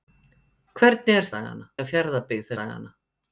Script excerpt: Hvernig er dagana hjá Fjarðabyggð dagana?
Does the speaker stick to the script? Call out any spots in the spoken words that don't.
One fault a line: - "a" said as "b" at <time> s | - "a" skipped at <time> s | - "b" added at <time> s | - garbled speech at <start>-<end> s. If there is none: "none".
none